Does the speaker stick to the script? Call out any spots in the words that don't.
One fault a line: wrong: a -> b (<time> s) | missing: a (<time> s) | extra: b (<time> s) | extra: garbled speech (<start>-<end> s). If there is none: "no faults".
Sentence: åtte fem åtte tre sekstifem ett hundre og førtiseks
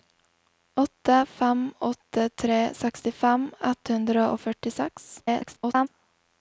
extra: garbled speech (5.2-5.9 s)